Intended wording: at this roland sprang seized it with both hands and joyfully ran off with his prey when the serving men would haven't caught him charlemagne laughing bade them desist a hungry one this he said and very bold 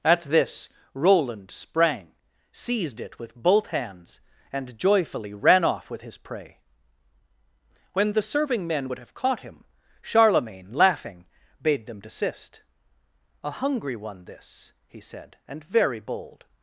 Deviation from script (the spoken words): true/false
true